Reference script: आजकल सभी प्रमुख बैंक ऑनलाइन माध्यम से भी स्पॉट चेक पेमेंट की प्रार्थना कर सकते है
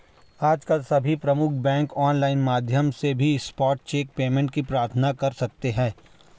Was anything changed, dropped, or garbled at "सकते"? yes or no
no